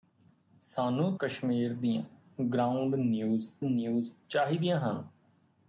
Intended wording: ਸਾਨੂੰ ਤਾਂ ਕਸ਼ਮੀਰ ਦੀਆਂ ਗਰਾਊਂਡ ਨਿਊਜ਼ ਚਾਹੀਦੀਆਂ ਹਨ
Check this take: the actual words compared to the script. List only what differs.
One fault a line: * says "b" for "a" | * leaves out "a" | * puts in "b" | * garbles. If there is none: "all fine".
* leaves out "ਤਾਂ"
* puts in "ਨਿਊਜ਼"